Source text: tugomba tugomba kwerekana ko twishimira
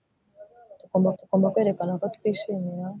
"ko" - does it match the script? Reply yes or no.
yes